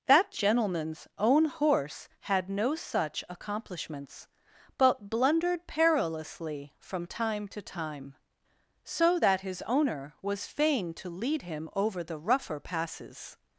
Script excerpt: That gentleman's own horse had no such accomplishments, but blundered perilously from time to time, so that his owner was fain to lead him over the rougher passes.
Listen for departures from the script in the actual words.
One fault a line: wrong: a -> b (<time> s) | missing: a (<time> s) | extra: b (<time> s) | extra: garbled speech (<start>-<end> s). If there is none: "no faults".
no faults